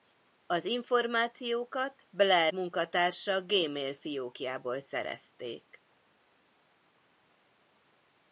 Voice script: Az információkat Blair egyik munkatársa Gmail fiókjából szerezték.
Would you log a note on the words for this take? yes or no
yes